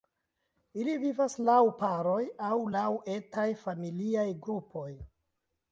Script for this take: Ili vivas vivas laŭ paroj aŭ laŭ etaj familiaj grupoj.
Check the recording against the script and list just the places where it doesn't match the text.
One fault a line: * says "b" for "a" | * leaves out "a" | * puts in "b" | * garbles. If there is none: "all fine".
* leaves out "vivas"